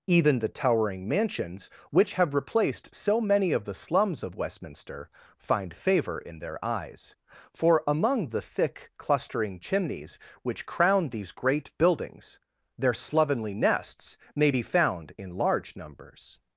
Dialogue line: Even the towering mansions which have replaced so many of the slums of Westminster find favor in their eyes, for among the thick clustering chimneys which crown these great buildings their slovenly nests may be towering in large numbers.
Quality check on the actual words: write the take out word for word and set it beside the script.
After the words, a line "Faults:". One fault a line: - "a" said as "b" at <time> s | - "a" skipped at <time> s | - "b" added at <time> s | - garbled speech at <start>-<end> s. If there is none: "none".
Even the towering mansions which have replaced so many of the slums of Westminster find favor in their eyes, for among the thick clustering chimneys which crown these great buildings their slovenly nests may be found in large numbers.
Faults:
- "towering" said as "found" at 14.6 s